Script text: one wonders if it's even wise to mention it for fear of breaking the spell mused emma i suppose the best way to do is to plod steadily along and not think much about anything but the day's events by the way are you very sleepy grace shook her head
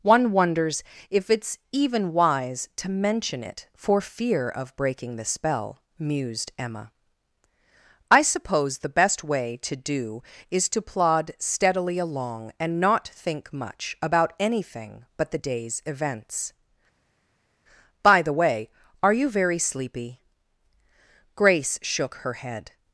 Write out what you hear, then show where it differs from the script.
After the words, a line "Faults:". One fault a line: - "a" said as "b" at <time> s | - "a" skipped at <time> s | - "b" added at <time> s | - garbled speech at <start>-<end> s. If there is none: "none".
one wonders if it's even wise to mention it for fear of breaking the spell mused emma i suppose the best way to do is to plod steadily along and not think much about anything but the day's events by the way are you very sleepy grace shook her head
Faults:
none